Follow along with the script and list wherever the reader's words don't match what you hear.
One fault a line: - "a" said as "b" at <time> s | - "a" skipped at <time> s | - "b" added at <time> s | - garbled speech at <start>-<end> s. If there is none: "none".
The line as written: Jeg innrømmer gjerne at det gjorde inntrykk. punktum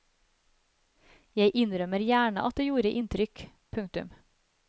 none